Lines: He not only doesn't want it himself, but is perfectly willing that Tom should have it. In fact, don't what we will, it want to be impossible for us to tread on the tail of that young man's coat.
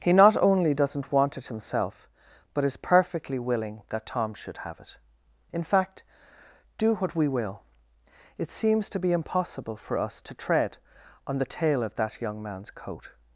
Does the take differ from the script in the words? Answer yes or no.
yes